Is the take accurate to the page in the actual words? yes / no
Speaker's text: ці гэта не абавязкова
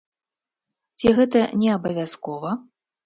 yes